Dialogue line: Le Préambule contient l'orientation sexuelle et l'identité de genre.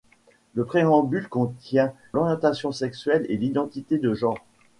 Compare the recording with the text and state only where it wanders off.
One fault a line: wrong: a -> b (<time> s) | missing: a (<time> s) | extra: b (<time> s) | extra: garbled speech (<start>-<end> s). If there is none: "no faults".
no faults